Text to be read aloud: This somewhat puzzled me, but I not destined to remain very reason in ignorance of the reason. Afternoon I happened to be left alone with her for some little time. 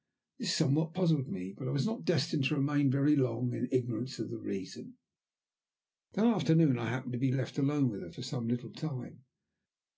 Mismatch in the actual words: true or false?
true